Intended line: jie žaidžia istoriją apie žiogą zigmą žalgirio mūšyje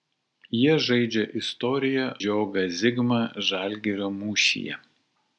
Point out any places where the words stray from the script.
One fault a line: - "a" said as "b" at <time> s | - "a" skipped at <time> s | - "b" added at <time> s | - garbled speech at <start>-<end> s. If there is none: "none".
- "apie" skipped at 2.1 s